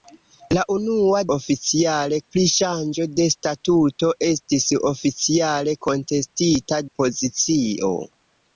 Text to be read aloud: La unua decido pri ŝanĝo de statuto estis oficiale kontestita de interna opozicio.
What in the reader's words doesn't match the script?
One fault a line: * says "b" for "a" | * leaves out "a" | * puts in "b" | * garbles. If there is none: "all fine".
* says "oficiale" for "decido"
* leaves out "de interna"